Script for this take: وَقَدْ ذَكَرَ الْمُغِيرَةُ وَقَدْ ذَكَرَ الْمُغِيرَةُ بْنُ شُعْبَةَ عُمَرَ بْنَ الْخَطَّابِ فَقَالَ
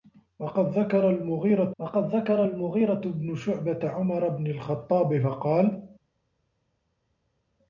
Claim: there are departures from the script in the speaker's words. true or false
false